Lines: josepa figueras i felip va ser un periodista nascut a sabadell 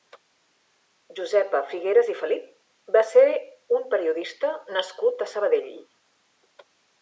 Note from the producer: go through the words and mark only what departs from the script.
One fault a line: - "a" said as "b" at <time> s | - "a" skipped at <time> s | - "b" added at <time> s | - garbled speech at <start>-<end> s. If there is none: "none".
none